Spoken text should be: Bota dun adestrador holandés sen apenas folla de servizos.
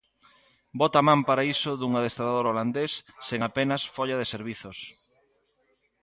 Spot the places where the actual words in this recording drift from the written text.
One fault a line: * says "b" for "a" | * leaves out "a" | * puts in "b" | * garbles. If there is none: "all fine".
* puts in "man para iso"